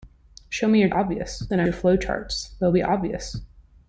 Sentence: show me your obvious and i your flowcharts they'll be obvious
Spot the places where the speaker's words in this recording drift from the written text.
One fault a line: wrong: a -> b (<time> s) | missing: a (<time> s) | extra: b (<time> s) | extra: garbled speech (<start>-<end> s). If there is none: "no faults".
no faults